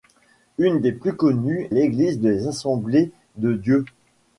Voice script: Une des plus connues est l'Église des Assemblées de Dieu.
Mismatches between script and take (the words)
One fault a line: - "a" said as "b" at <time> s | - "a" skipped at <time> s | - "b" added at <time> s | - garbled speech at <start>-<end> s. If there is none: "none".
- "est" skipped at 1.7 s